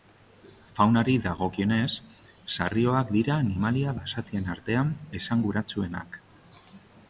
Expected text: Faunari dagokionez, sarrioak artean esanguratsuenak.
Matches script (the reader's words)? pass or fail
fail